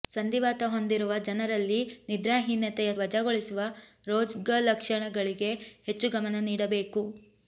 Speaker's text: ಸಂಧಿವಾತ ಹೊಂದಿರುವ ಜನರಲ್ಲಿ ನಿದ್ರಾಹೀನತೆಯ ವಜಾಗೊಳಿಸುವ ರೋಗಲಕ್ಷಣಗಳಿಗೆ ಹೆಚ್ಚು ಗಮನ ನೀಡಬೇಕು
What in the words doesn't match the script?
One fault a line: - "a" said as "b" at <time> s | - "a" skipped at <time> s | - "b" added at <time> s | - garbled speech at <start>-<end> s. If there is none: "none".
none